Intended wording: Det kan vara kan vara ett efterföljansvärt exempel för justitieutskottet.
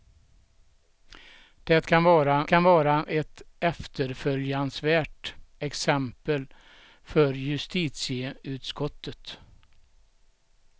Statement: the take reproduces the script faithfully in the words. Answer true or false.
true